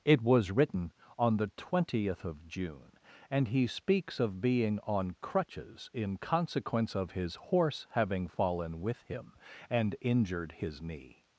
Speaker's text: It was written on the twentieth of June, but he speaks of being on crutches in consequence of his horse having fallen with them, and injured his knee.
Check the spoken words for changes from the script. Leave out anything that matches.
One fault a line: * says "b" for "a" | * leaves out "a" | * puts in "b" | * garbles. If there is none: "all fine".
* says "and" for "but"
* says "him" for "them"